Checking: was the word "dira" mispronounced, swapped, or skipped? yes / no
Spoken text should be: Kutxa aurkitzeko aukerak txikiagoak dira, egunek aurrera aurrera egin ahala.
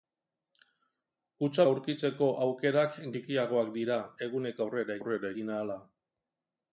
no